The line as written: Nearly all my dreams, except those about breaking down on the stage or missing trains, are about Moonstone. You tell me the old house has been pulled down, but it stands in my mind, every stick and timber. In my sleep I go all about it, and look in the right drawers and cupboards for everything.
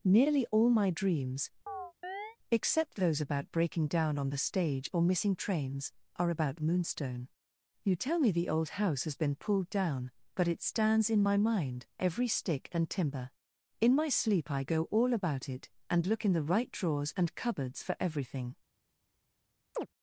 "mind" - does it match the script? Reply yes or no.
yes